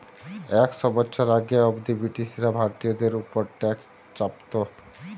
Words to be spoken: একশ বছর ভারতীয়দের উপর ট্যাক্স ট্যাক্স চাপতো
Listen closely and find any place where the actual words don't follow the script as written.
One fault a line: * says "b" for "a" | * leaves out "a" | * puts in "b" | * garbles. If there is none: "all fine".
* puts in "আগে অব্দি ব্রিটিশরা"
* leaves out "ট্যাক্স"